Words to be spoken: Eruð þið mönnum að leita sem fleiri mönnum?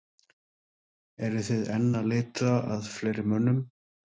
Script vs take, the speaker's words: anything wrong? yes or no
yes